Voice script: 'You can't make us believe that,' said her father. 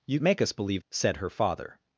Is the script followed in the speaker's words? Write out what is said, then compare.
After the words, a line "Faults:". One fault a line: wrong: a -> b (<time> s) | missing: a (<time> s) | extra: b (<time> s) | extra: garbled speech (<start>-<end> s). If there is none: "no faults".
'You make us believe,' said her father.
Faults:
missing: can't (0.2 s)
missing: that (0.8 s)